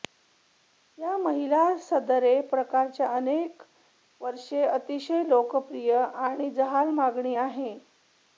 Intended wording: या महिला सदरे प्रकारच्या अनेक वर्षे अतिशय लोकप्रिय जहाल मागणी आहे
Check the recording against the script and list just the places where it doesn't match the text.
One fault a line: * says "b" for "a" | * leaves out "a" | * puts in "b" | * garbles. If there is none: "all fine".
* puts in "आणि"